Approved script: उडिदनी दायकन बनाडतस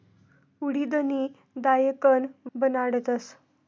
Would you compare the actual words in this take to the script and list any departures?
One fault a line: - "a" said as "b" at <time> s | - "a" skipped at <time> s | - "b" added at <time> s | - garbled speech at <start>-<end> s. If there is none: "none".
none